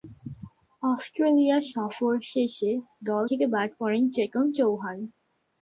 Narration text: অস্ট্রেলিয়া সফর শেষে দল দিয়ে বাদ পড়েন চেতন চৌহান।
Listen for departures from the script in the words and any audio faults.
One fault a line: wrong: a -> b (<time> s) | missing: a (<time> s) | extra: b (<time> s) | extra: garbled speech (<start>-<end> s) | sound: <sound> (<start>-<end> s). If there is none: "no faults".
wrong: দিয়ে -> থেকে (3.2 s)